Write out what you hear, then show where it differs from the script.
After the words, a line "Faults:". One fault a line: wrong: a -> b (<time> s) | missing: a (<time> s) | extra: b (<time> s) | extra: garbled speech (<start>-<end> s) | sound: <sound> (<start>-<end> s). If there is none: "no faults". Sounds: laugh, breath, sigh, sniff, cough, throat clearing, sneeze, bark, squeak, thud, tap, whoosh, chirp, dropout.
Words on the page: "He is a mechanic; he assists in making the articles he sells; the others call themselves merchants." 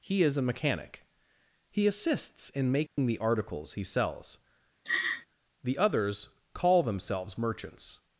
"He is a mechanic; he assists in making the articles he sells; the others call themselves merchants."
Faults:
sound: dropout (2.9-3.0 s)
sound: laugh (4.8-5.3 s)